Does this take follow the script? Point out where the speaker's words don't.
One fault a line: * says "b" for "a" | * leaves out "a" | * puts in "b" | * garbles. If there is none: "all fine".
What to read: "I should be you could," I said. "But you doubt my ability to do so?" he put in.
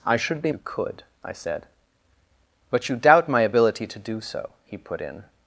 all fine